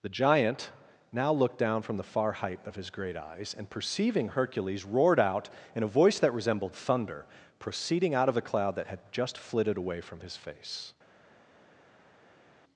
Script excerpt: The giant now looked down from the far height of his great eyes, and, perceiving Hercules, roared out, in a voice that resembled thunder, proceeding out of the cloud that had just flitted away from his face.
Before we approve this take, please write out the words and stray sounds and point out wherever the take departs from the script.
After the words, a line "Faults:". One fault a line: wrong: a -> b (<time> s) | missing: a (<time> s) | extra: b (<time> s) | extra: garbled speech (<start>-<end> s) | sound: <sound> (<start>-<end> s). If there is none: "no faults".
The giant now looked down from the far height of his great eyes, and, perceiving Hercules, roared out, in a voice that resembled thunder, proceeding out of the cloud that had just flitted away from his face.
Faults:
no faults